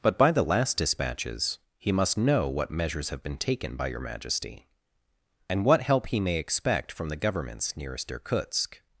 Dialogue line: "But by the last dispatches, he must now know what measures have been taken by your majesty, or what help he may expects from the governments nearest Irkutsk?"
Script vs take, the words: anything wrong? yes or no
yes